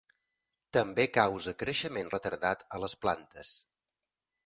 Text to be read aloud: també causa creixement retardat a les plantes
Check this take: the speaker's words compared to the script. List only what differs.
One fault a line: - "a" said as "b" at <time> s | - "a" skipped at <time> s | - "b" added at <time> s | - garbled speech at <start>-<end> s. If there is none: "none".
none